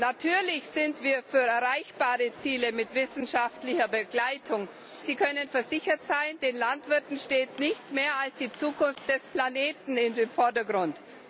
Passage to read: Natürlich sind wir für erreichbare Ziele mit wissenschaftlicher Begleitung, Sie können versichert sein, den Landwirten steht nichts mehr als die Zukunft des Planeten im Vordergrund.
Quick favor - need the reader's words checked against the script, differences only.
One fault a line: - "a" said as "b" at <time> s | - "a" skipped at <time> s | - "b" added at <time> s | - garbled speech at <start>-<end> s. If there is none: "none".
none